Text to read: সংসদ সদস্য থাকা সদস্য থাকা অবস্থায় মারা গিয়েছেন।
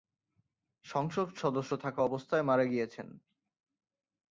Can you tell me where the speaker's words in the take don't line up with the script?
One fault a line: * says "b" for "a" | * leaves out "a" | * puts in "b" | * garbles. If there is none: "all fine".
* leaves out "সদস্য থাকা"